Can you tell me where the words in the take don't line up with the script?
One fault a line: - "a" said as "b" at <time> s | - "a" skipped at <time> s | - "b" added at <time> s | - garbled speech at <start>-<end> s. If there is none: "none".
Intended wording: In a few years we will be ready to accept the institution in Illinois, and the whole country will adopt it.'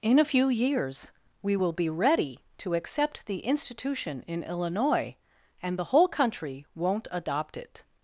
- "will" said as "won't" at 6.7 s